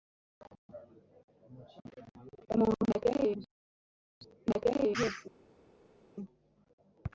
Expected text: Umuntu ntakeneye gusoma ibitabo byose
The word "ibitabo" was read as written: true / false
false